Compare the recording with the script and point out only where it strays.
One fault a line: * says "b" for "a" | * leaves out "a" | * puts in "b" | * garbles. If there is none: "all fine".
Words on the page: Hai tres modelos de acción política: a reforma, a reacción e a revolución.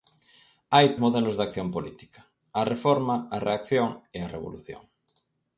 * leaves out "tres"